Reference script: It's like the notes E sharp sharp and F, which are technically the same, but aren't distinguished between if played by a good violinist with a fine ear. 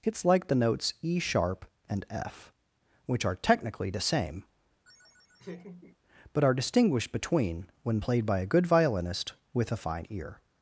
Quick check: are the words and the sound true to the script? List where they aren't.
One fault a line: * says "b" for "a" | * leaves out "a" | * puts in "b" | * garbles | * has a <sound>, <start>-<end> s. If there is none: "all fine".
* leaves out "sharp"
* has a laugh, 4.8-6.0 s
* says "are" for "aren't"
* says "when" for "if"